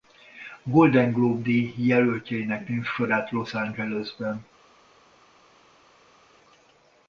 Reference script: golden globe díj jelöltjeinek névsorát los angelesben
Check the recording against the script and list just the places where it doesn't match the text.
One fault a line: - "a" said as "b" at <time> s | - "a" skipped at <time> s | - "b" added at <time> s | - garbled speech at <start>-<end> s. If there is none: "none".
none